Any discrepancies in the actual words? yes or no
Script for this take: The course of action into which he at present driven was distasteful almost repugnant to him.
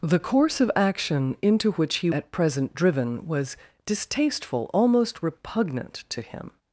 no